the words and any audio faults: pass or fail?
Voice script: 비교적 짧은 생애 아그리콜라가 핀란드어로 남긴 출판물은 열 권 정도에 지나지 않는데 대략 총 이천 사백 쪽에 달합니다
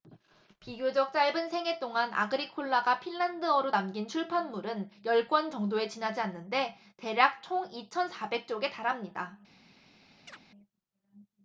fail